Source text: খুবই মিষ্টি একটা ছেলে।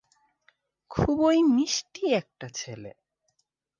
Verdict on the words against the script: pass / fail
pass